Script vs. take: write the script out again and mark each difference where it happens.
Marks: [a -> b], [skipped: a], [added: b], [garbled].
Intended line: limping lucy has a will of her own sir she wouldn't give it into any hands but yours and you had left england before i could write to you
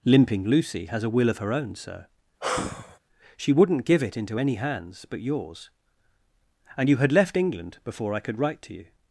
limping lucy has a will of her own sir she wouldn't give it into any hands but yours and you had left england before i could write to you